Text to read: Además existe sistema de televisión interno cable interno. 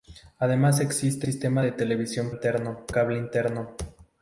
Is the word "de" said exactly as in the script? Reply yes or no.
yes